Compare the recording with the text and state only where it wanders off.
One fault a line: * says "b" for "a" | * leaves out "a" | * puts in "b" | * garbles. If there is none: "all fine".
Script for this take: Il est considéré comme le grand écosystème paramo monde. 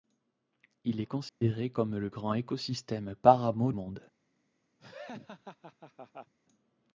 all fine